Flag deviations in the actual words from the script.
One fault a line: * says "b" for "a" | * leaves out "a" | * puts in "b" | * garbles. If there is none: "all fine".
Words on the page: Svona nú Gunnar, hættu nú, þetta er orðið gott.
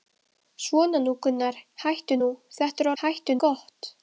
* says "hættu" for "orðið"